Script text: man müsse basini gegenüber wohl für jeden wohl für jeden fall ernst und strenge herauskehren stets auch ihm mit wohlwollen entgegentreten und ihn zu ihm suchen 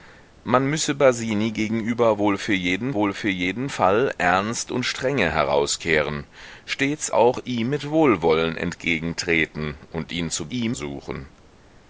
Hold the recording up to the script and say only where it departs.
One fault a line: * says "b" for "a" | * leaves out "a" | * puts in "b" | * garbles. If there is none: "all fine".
all fine